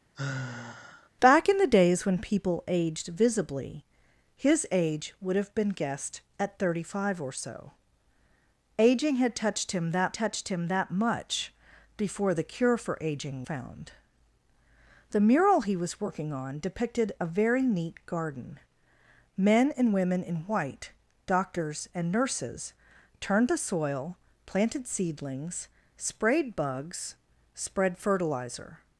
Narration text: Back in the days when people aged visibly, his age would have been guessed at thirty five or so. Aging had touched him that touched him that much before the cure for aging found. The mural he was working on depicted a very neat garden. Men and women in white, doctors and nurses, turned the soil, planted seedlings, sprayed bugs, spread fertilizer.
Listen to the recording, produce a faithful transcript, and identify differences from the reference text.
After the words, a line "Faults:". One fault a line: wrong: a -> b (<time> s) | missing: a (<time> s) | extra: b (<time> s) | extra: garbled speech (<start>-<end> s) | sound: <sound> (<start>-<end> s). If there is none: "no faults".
Back in the days when people aged visibly, his age would have been guessed at thirty five or so. Aging had touched him that touched him that much before the cure for aging found. The mural he was working on depicted a very neat garden. Men and women in white, doctors and nurses, turned the soil, planted seedlings, sprayed bugs, spread fertilizer.
Faults:
sound: sigh (0.1-1.1 s)